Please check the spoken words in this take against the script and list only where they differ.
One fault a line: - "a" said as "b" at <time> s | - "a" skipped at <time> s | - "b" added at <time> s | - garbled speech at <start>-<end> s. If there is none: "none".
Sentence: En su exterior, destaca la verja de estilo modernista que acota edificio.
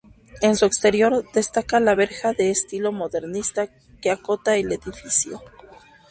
- "el" added at 4.6 s